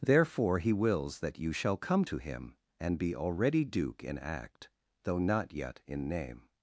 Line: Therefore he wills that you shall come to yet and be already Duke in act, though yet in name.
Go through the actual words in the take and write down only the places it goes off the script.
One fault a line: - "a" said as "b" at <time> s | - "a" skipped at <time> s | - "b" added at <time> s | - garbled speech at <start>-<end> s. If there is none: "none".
- "yet" said as "him" at 2.2 s
- "not" added at 5.2 s